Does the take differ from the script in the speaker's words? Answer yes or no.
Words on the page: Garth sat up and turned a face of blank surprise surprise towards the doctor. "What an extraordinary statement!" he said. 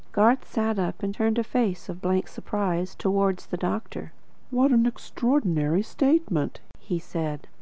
yes